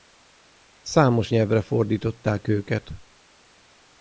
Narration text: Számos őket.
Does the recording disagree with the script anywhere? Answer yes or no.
yes